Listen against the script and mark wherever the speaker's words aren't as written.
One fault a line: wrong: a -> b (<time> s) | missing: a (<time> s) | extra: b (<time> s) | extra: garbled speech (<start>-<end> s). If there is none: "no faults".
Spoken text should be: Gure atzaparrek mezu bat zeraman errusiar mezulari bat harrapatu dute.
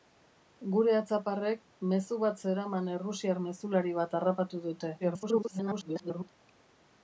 extra: garbled speech (5.0-6.3 s)